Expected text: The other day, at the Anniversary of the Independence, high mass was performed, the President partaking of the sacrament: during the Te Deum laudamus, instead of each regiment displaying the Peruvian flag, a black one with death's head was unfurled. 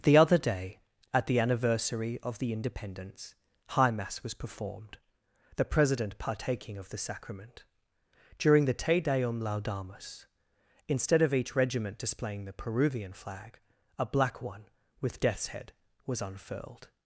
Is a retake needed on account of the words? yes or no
no